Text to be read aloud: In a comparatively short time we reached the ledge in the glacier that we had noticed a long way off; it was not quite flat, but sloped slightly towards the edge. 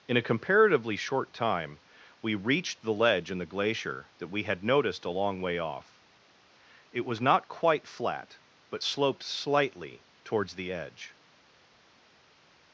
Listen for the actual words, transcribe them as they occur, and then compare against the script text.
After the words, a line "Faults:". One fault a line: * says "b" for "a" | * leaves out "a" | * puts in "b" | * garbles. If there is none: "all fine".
In a comparatively short time we reached the ledge in the glacier that we had noticed a long way off; it was not quite flat, but sloped slightly towards the edge.
Faults:
all fine